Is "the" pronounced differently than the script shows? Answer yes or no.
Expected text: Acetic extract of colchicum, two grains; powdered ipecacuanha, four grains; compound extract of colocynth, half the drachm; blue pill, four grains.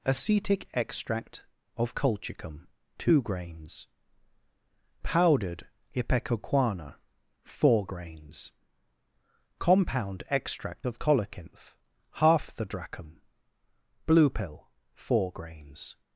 no